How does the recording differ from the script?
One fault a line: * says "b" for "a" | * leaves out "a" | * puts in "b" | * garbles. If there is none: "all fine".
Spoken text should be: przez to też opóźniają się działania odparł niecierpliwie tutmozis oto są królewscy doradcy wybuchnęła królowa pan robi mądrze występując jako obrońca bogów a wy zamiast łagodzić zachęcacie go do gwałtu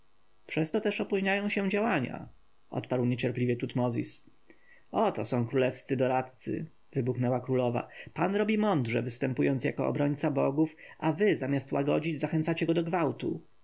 all fine